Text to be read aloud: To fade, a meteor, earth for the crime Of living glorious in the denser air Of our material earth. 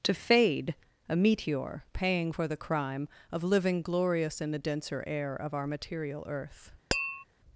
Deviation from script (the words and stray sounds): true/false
true